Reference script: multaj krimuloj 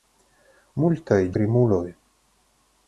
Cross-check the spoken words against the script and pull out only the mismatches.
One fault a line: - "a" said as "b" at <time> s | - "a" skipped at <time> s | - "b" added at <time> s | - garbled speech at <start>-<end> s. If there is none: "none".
none